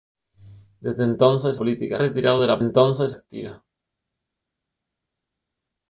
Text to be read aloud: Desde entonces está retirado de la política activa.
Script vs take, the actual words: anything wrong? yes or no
yes